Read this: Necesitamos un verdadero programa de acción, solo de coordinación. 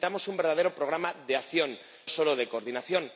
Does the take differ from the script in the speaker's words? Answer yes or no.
no